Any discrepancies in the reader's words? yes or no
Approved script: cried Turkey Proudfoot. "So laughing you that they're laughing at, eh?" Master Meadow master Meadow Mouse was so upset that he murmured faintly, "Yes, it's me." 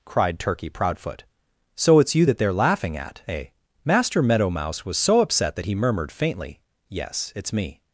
yes